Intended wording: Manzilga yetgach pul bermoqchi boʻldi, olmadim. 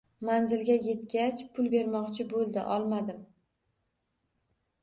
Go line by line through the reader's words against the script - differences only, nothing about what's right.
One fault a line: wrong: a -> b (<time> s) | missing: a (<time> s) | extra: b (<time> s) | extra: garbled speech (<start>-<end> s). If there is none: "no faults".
no faults